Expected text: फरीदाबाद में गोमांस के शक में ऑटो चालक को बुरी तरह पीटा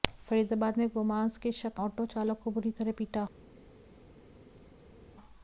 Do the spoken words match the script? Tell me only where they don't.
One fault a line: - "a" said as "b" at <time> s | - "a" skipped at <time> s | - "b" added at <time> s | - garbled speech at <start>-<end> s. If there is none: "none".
- "में" skipped at 1.8 s